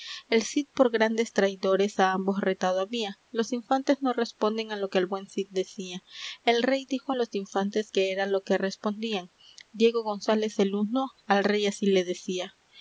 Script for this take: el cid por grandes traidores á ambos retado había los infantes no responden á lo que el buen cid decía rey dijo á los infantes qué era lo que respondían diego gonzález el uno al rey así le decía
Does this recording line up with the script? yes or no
no